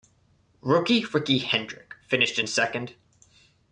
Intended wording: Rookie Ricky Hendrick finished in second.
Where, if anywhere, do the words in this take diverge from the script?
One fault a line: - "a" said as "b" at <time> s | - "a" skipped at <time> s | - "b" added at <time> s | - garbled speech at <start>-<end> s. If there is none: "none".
none